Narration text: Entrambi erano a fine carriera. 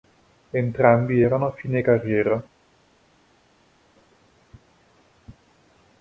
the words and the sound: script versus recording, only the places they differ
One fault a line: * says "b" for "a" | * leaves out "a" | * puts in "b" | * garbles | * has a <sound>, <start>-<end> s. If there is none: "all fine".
all fine